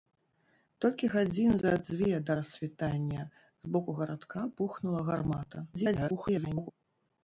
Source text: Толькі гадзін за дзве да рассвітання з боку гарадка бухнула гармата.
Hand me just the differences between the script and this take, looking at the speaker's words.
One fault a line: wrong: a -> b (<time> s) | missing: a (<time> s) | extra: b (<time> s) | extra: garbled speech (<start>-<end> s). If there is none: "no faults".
extra: garbled speech (5.7-6.7 s)